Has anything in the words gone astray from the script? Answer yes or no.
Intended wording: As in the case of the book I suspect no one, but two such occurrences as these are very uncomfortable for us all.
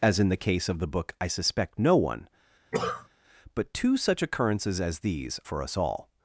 yes